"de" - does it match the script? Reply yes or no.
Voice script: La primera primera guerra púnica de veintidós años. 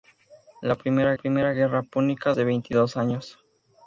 yes